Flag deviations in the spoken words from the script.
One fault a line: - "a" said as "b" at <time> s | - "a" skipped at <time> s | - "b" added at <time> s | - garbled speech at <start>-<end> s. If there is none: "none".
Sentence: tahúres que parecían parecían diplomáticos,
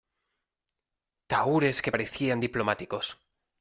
- "parecían" skipped at 2.4 s